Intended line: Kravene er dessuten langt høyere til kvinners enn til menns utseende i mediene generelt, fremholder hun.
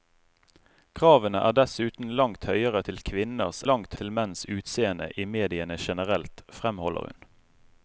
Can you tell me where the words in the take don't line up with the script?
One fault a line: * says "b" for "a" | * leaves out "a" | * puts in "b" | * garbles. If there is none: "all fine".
* says "langt" for "enn"